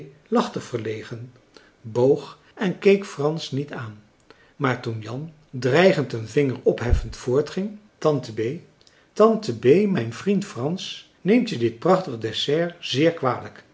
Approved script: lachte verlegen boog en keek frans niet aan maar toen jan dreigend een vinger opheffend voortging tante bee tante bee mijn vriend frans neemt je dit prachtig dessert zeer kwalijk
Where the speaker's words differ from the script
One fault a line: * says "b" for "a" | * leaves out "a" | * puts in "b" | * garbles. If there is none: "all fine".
all fine